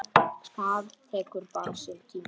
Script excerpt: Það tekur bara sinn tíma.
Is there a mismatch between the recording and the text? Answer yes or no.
no